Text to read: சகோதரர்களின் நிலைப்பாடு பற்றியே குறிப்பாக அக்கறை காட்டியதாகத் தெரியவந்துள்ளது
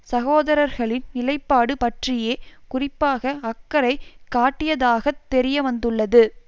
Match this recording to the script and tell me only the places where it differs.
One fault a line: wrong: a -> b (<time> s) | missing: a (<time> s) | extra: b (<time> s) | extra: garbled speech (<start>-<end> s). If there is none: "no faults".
no faults